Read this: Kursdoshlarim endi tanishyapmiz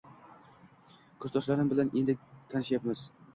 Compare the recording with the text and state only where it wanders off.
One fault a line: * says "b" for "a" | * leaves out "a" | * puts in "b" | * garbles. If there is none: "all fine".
* puts in "bilan"